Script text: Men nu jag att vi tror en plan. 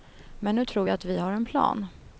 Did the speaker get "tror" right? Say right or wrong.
wrong